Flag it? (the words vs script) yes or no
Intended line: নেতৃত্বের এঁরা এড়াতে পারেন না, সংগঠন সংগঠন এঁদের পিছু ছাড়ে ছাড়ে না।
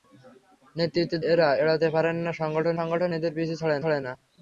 no